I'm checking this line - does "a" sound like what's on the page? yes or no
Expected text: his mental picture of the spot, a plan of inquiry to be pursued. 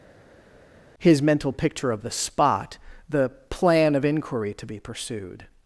no